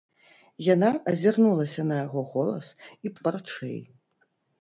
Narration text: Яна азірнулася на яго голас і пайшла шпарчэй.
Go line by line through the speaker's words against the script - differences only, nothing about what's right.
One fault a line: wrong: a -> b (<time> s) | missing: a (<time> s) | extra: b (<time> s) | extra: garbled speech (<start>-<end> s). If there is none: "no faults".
missing: пайшла (3.1 s)